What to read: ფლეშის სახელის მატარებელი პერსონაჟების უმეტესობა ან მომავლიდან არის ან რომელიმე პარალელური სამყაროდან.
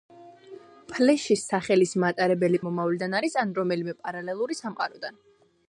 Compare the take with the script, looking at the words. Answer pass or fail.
fail